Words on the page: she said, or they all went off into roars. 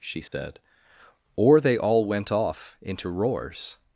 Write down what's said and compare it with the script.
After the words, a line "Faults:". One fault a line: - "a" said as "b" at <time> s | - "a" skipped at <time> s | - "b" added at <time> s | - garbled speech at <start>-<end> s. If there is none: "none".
she said, or they all went off into roars.
Faults:
none